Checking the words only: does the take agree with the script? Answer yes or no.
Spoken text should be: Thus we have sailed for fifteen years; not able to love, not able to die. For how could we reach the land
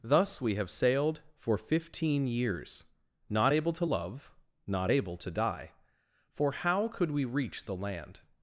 yes